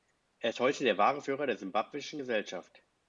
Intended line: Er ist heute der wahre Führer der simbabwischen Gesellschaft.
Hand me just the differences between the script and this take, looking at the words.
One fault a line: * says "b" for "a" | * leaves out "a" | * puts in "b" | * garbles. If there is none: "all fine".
all fine